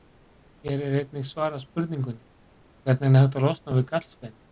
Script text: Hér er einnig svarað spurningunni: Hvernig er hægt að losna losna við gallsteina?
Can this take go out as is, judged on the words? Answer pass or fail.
fail